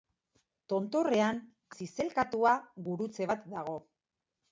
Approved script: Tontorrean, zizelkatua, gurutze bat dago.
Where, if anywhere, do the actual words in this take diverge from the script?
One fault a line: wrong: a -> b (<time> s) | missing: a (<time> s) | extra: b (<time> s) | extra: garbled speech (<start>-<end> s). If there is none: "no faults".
no faults